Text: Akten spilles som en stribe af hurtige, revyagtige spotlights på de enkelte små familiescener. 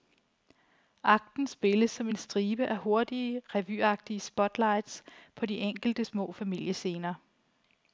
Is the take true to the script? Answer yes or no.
yes